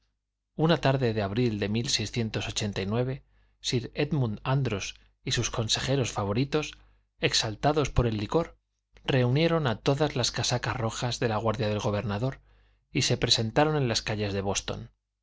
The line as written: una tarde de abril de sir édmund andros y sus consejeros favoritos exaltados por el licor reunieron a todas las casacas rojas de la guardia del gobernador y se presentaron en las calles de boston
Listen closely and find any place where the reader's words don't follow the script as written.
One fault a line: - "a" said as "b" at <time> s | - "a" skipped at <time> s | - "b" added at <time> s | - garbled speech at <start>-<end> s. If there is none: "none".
none